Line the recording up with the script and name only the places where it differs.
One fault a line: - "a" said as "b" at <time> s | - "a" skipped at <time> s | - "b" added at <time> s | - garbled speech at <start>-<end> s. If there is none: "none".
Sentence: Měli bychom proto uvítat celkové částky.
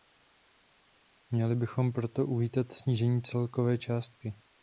- "snížení" added at 2.7 s